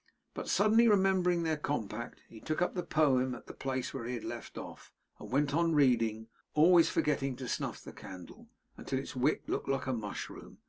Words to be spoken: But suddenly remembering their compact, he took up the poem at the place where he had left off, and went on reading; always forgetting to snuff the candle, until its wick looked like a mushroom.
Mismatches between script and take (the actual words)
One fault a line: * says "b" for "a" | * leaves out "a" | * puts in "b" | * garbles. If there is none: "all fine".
all fine